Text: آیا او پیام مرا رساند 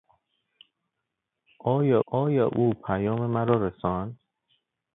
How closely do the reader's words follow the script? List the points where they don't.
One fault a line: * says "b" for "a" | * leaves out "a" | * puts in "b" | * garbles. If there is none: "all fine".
* puts in "آیا"